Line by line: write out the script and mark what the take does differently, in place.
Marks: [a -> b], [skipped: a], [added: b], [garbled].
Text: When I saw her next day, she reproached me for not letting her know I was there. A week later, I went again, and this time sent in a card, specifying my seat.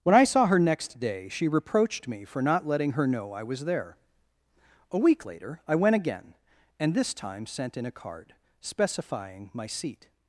When I saw her next day, she reproached me for not letting her know I was there. A week later, I went again, and this time sent in a card, specifying my seat.